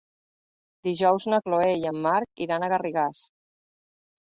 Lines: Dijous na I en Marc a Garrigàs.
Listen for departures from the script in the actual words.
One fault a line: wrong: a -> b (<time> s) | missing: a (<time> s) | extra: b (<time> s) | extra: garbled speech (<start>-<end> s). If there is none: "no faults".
extra: Chloé (1.5 s)
extra: iran (2.5 s)